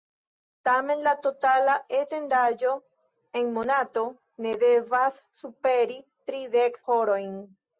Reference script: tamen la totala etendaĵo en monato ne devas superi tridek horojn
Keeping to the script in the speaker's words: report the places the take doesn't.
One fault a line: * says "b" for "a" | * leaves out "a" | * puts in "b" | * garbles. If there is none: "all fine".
all fine